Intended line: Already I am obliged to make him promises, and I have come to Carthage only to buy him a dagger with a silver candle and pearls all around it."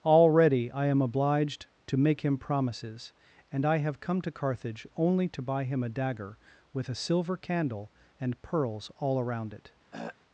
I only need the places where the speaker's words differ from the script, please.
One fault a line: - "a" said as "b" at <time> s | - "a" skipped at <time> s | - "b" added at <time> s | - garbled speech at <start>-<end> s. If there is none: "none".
none